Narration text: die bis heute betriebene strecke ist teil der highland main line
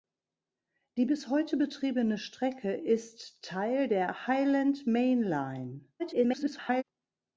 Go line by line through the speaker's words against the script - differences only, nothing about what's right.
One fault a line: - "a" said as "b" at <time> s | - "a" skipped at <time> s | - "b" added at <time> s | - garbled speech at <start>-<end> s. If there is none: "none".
- garbled speech at 6.0-6.8 s